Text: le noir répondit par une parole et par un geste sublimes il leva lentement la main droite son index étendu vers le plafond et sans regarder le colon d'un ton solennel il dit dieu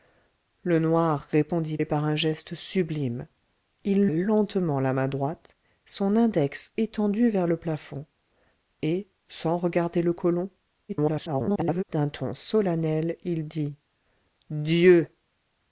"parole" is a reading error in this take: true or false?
true